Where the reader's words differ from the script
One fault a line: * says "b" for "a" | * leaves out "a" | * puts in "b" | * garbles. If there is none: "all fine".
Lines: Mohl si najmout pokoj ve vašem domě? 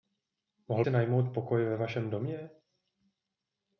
all fine